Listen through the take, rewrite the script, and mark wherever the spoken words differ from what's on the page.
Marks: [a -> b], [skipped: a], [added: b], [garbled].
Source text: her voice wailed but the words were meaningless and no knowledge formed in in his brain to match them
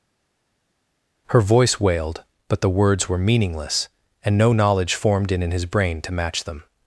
her voice wailed but the words were meaningless and no knowledge formed in in his brain to match them